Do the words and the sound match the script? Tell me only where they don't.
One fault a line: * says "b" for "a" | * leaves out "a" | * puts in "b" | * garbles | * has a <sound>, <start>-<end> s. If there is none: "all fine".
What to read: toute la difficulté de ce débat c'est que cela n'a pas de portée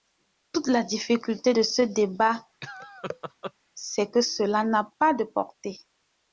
* has a laugh, 2.6-3.5 s